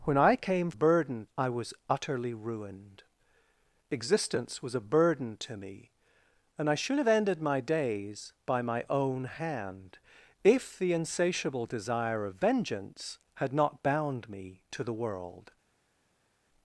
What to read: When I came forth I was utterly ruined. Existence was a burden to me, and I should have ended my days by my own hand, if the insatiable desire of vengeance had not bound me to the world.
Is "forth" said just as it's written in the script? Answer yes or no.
no